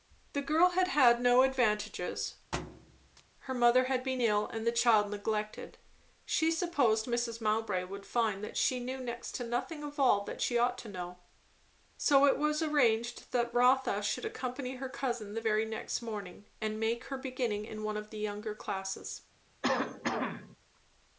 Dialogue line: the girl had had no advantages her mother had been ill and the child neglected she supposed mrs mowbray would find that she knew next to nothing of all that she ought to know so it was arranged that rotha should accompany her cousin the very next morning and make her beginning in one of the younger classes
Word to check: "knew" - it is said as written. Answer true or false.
true